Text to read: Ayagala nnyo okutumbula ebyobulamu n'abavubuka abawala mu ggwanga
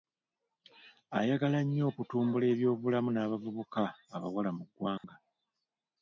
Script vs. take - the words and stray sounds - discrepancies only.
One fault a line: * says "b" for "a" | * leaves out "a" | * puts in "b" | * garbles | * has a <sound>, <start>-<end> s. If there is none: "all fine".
* has a dropout, 5.0-5.0 s